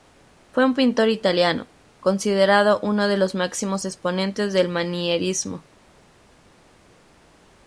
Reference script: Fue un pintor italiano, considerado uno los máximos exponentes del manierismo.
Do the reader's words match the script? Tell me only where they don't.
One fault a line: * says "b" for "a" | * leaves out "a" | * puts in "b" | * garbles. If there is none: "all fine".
* puts in "de"